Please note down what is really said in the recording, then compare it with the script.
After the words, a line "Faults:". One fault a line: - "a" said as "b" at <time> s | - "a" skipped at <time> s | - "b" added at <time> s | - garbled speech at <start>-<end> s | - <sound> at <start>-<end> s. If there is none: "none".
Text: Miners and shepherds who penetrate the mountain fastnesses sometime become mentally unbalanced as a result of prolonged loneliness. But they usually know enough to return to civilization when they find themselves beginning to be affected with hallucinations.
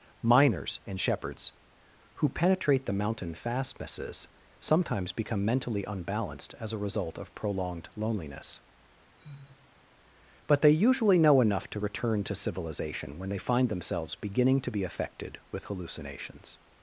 Miners and shepherds who penetrate the mountain fastnesses sometimes become mentally unbalanced as a result of prolonged loneliness. But they usually know enough to return to civilization when they find themselves beginning to be affected with hallucinations.
Faults:
- "sometime" said as "sometimes" at 4.6 s
- sigh at 9.2-9.9 s